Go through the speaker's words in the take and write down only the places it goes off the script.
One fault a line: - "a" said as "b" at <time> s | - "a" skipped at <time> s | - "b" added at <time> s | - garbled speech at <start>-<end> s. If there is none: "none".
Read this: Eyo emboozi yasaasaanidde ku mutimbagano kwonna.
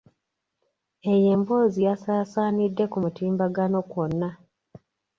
none